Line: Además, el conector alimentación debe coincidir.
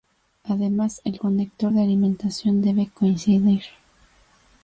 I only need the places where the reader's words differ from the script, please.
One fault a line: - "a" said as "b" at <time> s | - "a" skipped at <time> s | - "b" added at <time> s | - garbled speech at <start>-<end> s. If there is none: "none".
- "de" added at 1.7 s